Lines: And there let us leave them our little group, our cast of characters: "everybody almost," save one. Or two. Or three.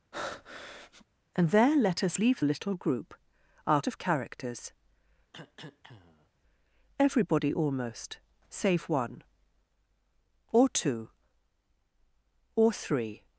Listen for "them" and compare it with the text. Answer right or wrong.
wrong